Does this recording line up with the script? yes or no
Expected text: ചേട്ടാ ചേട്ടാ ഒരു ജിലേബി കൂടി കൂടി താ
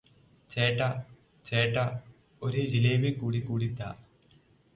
yes